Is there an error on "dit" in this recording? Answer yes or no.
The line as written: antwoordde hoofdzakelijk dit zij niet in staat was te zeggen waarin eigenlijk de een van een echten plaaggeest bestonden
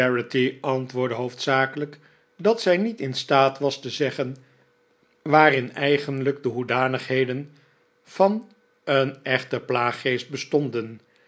yes